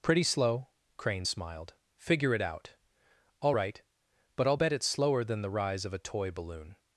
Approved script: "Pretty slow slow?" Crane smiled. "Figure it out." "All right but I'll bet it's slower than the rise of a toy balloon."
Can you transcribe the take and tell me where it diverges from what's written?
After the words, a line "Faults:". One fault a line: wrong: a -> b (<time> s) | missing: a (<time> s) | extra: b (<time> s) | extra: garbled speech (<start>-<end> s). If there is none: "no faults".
"Pretty slow?" Crane smiled. "Figure it out." "All right but I'll bet it's slower than the rise of a toy balloon."
Faults:
missing: slow (0.7 s)